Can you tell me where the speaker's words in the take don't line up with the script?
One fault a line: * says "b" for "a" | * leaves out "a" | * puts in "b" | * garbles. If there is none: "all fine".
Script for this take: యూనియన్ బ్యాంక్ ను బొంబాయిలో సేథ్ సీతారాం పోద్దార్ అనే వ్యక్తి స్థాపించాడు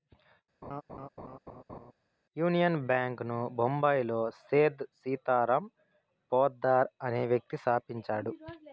all fine